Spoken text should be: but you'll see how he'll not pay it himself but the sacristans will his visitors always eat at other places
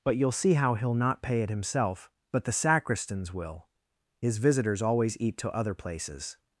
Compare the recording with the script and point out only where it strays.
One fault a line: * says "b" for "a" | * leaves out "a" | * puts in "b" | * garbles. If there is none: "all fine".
* says "to" for "at"